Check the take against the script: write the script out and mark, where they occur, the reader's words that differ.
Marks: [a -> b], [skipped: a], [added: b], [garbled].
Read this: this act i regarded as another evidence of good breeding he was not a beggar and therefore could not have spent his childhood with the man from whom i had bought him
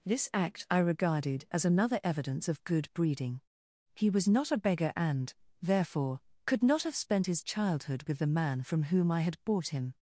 this act i regarded as another evidence of good breeding he was not a beggar and therefore could not have spent his childhood with the man from whom i had bought him